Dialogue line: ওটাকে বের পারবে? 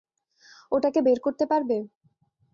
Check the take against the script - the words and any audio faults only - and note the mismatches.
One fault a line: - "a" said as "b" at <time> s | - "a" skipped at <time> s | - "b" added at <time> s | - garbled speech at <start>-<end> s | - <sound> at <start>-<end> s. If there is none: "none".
- "করতে" added at 1.3 s